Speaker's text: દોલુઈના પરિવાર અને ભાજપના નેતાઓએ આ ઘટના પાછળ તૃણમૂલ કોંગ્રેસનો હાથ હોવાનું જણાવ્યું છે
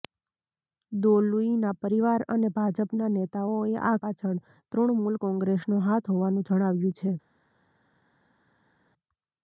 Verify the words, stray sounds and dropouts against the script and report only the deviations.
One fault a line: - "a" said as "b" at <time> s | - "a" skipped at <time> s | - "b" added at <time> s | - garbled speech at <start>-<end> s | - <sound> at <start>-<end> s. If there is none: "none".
- "ઘટના" skipped at 4.0 s